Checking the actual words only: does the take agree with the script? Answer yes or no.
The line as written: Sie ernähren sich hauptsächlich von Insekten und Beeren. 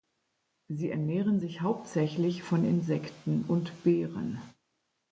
yes